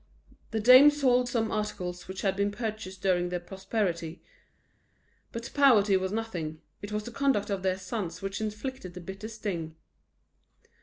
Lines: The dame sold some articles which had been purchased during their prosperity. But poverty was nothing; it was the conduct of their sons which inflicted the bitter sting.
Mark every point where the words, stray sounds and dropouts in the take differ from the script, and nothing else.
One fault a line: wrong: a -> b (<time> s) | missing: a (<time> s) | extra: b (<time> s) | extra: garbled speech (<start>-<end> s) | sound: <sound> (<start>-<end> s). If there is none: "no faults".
no faults